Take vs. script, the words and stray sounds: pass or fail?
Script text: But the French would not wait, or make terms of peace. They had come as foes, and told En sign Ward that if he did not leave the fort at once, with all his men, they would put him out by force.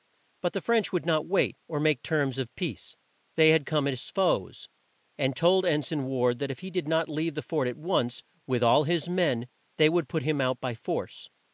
pass